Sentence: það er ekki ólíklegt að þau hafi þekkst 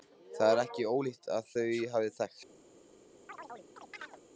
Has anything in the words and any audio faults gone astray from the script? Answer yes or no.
yes